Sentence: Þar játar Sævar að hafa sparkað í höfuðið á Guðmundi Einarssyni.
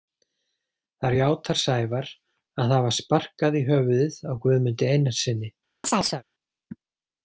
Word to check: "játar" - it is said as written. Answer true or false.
true